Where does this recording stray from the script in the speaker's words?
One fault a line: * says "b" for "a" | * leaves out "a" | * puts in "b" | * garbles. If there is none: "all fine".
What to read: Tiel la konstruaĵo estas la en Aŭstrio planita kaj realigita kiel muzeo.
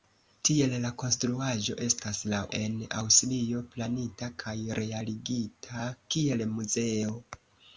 all fine